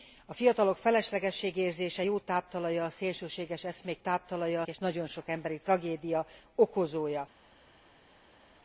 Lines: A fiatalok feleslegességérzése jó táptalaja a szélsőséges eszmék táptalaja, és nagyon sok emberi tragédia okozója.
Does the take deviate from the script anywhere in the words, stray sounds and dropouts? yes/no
no